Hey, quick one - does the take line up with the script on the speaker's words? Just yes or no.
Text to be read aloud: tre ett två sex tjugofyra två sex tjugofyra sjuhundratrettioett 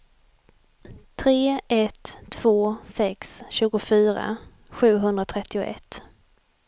no